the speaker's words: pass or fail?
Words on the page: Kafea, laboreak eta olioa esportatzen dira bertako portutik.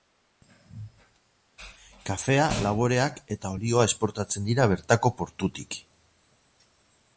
pass